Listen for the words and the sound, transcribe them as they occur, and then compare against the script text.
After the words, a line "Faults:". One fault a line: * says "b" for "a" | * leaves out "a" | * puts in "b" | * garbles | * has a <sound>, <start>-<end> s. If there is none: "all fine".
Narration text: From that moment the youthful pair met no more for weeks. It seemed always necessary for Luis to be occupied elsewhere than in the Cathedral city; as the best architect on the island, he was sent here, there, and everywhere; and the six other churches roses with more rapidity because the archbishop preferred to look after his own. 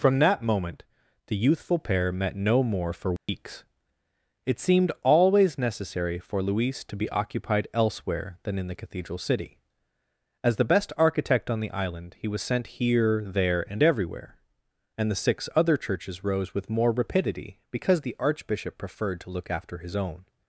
From that moment the youthful pair met no more for weeks. It seemed always necessary for Luis to be occupied elsewhere than in the Cathedral city; as the best architect on the island, he was sent here, there, and everywhere; and the six other churches rose with more rapidity because the archbishop preferred to look after his own.
Faults:
* has a dropout, 3.2-3.3 s
* says "rose" for "roses"